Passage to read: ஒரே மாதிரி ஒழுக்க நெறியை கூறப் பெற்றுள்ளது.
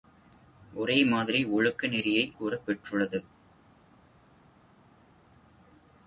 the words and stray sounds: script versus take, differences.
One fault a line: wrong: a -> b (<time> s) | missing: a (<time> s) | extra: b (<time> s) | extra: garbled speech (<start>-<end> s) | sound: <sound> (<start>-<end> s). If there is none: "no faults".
no faults